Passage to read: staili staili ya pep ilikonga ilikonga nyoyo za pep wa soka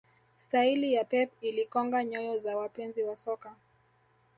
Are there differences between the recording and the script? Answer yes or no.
yes